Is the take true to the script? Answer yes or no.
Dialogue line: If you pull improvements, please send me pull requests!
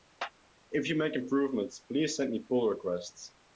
no